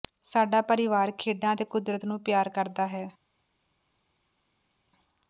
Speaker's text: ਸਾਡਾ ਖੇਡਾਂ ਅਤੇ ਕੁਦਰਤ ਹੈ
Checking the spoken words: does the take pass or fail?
fail